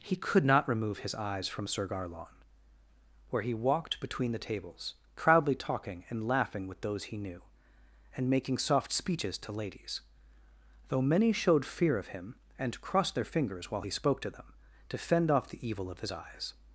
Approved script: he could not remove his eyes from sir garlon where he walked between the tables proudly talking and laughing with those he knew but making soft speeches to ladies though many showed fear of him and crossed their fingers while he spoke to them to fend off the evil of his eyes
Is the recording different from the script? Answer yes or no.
yes